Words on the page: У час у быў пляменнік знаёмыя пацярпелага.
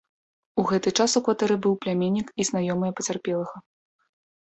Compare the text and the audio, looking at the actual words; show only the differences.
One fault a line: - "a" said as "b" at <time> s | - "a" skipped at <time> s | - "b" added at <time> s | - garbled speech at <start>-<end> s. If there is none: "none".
- "гэты" added at 0.7 s
- "кватэры" added at 1.3 s
- "і" added at 2.4 s